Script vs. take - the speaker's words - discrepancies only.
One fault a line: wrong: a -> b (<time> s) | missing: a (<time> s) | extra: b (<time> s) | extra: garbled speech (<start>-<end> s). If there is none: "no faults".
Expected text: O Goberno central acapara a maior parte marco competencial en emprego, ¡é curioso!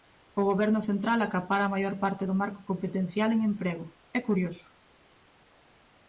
extra: do (2.2 s)